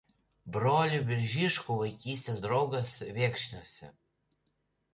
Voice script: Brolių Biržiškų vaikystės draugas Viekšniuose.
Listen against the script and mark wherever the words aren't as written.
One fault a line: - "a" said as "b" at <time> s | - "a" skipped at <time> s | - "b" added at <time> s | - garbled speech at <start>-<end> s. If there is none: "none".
none